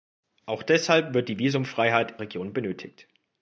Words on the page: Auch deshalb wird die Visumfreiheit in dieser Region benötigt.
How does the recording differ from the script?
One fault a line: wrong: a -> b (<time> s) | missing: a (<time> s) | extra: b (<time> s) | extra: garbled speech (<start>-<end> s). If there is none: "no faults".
missing: in dieser (2.2 s)